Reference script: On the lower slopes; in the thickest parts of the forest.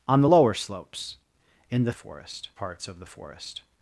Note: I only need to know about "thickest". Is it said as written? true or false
false